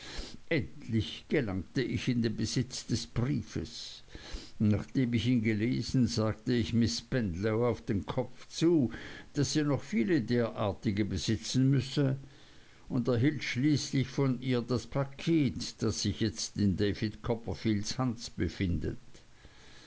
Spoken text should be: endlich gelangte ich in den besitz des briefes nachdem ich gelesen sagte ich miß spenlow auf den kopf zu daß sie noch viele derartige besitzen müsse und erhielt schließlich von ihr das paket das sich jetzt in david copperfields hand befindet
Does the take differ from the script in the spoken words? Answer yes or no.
yes